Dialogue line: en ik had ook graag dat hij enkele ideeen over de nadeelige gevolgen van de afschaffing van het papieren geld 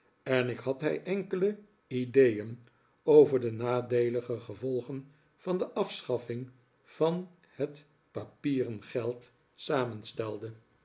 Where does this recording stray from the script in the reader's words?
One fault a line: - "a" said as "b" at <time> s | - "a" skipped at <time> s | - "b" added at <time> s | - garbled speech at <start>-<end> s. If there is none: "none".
- "ook graag dat" skipped at 0.8 s